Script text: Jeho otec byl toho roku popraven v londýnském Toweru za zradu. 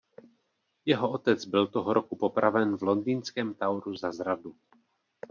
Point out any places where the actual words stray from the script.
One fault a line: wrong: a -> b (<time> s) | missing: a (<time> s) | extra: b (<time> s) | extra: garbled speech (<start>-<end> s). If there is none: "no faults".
no faults